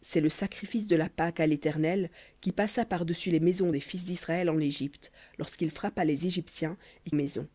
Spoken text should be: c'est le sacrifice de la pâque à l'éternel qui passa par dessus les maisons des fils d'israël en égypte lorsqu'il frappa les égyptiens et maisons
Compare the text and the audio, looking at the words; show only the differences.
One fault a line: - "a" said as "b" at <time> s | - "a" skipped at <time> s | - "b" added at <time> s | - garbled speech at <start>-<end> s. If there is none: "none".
none